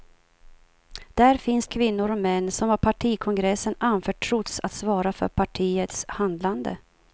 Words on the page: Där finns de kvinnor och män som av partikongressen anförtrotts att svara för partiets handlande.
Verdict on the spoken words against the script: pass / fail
fail